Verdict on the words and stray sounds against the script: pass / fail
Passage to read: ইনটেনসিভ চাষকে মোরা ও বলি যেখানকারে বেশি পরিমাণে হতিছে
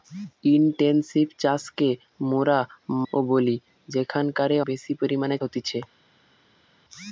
pass